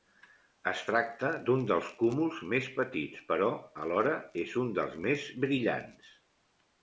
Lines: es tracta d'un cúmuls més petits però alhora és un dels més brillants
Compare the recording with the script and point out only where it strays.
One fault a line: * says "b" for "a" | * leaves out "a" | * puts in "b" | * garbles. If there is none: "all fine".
* puts in "dels"